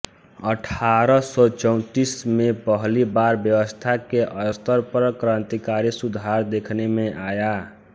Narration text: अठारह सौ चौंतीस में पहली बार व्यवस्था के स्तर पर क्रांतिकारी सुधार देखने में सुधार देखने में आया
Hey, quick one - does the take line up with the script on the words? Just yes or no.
no